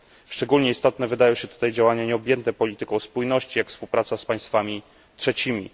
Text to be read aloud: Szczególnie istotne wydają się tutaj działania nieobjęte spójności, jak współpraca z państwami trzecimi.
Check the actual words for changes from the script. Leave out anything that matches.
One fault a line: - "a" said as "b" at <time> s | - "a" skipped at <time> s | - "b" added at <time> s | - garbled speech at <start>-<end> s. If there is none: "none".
- "polityką" added at 2.5 s